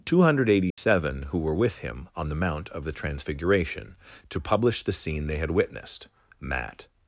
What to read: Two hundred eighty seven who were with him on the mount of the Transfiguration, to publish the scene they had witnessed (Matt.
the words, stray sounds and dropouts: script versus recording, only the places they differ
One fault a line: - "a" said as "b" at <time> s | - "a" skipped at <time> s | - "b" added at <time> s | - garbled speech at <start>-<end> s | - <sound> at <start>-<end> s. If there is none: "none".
- dropout at 0.7-0.8 s